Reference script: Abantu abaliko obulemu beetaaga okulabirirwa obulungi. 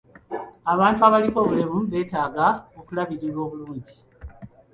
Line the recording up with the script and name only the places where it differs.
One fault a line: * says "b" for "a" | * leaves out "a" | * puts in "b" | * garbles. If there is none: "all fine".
all fine